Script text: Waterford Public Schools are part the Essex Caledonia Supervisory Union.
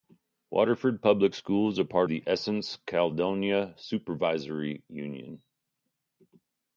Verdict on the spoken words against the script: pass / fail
pass